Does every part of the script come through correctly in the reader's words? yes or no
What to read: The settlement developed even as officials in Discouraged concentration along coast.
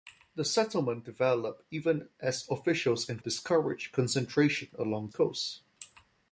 yes